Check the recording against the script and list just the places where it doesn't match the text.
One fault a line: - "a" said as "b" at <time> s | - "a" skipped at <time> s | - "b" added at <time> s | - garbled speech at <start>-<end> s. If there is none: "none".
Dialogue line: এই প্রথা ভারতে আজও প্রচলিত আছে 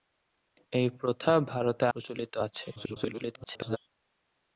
- "আজও" skipped at 1.9 s
- garbled speech at 2.8-3.8 s